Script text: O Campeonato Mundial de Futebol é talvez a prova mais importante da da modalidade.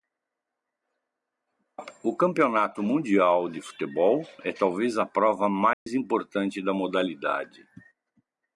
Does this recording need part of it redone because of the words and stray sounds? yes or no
yes